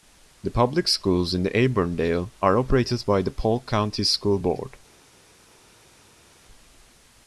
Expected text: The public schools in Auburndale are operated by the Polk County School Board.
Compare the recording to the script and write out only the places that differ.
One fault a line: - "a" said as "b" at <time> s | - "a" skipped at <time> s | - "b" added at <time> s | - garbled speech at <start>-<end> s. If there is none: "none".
none